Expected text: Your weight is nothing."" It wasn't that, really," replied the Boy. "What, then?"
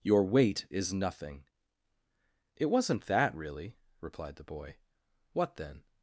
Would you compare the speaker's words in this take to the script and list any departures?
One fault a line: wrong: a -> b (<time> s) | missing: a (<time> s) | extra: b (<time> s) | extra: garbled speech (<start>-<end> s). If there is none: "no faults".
no faults